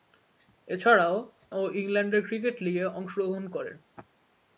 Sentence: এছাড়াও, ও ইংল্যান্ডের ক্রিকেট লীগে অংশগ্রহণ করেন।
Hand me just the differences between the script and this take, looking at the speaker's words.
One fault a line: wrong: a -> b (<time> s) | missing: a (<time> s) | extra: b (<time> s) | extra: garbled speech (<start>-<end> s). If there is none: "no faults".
no faults